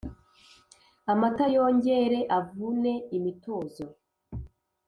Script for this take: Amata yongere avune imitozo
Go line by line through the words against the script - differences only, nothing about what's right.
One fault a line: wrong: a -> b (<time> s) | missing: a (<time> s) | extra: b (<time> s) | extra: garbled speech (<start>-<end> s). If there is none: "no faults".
no faults